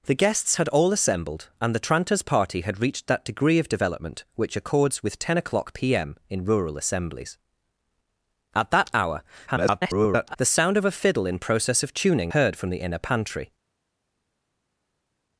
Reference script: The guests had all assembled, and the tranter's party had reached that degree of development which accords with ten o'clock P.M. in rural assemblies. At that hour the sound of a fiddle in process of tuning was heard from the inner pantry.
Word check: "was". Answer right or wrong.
wrong